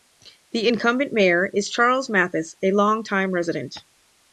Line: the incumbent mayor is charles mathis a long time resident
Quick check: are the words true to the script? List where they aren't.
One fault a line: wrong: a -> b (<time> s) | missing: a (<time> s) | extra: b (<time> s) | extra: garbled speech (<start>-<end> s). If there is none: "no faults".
no faults